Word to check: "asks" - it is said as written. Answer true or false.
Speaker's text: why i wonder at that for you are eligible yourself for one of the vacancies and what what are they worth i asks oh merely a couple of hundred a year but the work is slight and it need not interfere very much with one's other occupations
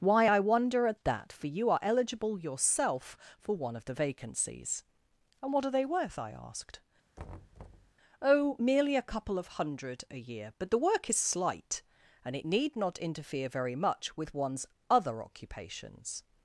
false